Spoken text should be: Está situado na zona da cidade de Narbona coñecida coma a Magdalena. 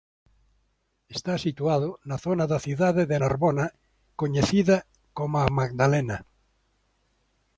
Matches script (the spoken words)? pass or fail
pass